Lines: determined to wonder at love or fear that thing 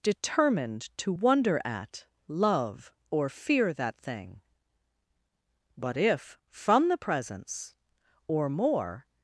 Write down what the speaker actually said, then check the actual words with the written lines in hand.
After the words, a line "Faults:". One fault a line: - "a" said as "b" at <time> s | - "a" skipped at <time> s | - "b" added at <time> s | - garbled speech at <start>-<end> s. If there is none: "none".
determined to wonder at love or fear that thing but if from the presence or more
Faults:
- "but if from the presence or more" added at 5.8 s